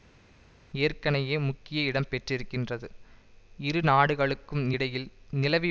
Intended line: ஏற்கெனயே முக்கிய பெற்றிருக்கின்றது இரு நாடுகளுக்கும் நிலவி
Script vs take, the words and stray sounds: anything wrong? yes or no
yes